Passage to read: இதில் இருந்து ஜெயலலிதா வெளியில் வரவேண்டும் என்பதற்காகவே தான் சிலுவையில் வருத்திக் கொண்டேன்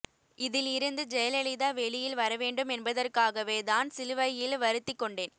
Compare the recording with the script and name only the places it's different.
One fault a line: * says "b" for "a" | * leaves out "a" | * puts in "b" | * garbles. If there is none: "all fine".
all fine